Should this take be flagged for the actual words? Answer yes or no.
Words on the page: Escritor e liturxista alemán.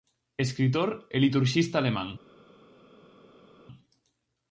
no